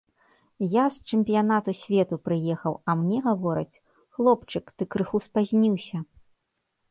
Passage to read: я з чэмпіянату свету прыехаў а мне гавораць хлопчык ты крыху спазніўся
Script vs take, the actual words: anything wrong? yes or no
no